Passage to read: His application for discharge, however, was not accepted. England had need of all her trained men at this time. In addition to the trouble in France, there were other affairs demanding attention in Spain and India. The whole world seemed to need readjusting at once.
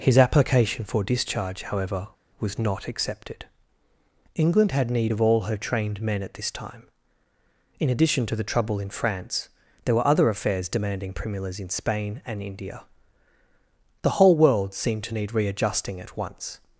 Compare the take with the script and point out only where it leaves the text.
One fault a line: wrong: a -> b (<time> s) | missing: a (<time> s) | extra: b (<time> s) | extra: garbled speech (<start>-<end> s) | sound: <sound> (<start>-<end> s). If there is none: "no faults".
wrong: attention -> primulas (11.1 s)